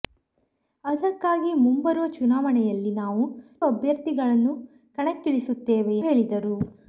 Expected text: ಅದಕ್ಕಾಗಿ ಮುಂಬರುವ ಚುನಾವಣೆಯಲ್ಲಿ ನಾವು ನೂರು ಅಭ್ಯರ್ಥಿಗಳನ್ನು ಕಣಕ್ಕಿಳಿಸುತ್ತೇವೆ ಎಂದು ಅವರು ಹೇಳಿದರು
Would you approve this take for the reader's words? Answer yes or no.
no